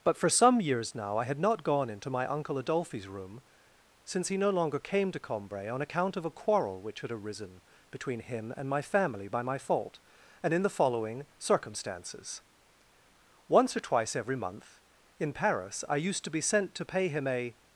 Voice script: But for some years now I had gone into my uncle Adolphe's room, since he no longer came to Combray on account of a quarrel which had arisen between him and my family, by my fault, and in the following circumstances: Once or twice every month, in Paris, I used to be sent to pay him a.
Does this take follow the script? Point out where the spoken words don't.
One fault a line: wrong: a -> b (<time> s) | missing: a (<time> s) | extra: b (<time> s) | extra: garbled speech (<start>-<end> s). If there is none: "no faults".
extra: not (1.4 s)